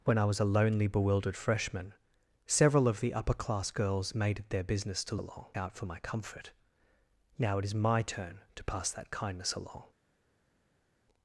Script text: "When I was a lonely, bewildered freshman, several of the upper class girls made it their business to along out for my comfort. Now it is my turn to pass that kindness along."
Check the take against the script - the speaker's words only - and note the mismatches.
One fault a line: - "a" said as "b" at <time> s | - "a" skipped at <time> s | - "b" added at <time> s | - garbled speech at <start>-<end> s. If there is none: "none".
none